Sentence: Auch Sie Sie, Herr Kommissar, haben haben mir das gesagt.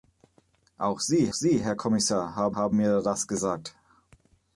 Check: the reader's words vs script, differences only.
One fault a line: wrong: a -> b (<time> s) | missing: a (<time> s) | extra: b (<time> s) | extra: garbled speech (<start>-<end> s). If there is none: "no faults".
no faults